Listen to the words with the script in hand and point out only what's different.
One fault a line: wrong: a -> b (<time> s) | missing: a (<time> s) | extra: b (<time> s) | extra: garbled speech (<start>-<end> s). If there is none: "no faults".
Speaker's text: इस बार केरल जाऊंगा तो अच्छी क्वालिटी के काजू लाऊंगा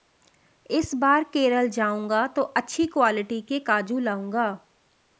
no faults